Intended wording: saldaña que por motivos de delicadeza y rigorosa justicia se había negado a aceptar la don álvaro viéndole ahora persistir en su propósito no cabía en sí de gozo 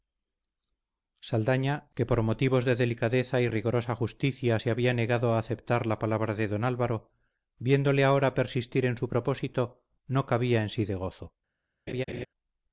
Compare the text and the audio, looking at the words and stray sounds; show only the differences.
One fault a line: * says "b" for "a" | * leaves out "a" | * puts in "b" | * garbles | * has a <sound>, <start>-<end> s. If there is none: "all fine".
* puts in "palabra de"
* has a laugh, 11.9-12.3 s